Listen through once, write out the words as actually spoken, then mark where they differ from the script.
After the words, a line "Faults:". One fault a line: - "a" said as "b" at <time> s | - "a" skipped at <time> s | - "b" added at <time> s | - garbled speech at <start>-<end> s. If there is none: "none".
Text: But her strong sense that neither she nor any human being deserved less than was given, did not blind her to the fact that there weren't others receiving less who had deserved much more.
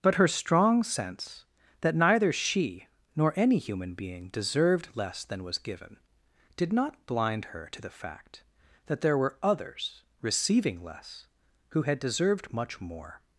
But her strong sense that neither she nor any human being deserved less than was given, did not blind her to the fact that there were others receiving less who had deserved much more.
Faults:
- "weren't" said as "were" at 9.2 s